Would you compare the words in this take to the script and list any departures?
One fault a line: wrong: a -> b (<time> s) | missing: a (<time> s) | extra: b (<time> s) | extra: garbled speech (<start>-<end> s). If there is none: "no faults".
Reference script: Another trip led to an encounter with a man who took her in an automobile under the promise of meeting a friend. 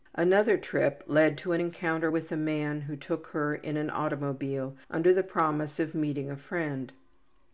no faults